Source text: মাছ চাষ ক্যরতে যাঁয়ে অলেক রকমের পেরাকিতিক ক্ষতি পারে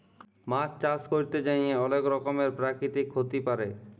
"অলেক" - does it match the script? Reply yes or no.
yes